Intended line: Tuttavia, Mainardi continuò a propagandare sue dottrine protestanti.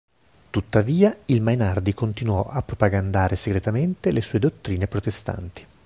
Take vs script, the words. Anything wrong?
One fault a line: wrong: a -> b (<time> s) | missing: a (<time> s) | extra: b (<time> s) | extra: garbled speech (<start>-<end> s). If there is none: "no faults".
extra: il (1.2 s)
extra: segretamente le (3.4 s)